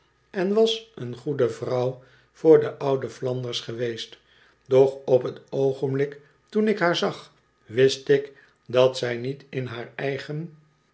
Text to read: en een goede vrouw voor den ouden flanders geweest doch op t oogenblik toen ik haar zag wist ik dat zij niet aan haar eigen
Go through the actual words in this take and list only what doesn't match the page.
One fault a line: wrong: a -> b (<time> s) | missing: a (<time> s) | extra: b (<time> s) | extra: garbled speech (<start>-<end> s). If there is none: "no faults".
extra: was (0.5 s)
wrong: aan -> in (9.5 s)